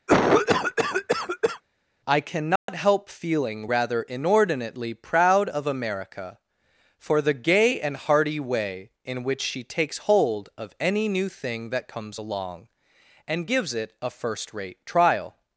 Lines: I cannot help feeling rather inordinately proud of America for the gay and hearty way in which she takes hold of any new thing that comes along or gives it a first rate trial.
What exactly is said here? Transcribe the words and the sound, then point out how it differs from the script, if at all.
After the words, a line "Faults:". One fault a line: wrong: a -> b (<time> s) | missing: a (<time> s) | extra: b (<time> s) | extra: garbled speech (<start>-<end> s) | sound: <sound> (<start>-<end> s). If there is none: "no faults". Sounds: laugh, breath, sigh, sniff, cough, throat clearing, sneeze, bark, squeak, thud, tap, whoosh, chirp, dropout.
I cannot help feeling rather inordinately proud of America for the gay and hearty way in which she takes hold of any new thing that comes along and gives it a first rate trial.
Faults:
sound: cough (0.1-1.6 s)
sound: dropout (2.6-2.7 s)
wrong: or -> and (13.3 s)